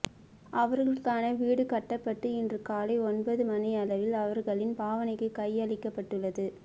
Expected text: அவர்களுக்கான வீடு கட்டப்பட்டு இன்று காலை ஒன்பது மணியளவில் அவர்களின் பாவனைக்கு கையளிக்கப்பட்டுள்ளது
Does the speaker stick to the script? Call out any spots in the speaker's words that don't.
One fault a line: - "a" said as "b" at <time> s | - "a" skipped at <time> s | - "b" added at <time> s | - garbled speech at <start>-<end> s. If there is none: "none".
none